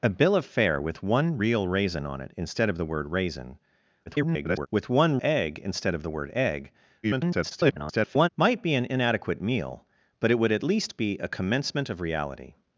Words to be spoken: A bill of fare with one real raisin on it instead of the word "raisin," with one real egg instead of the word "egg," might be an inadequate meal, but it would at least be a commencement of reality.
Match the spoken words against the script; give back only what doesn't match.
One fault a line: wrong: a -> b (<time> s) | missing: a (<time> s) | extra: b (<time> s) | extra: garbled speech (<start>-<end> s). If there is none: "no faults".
extra: garbled speech (4.1-4.7 s)
missing: real (5.2 s)
extra: garbled speech (7.0-8.3 s)